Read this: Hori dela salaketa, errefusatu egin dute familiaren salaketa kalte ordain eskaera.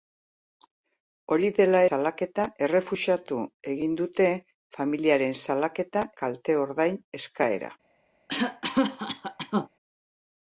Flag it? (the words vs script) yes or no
no